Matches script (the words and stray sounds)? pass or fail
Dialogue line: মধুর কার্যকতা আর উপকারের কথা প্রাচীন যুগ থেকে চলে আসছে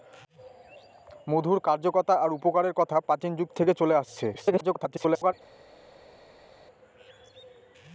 fail